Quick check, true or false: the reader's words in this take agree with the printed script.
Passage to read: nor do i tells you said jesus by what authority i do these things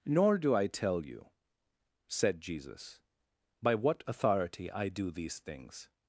false